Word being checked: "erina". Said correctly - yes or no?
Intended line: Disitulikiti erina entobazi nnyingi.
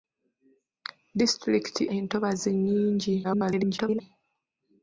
no